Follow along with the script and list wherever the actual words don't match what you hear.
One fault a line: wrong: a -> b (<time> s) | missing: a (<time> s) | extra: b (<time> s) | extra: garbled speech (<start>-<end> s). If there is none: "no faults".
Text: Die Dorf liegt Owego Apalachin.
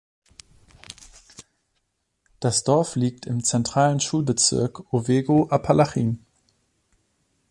wrong: Die -> Das (2.4 s)
extra: im zentralen Schulbezirk (3.3 s)